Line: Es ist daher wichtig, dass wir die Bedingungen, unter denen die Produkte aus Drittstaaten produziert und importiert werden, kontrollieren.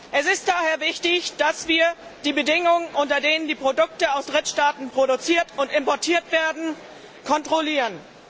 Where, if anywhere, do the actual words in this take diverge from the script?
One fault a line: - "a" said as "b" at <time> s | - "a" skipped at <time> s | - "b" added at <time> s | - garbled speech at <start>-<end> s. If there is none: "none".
none